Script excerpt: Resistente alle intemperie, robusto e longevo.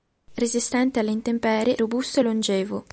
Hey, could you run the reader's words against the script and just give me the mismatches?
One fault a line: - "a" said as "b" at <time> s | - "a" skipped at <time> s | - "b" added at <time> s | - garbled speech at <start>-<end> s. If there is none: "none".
none